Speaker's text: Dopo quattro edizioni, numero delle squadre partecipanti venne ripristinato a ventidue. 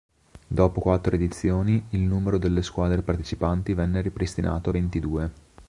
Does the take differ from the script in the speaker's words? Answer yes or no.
yes